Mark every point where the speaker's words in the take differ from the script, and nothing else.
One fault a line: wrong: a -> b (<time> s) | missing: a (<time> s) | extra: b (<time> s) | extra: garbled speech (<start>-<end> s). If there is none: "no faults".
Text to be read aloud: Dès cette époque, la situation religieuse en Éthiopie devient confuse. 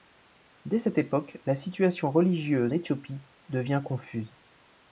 missing: en (2.7 s)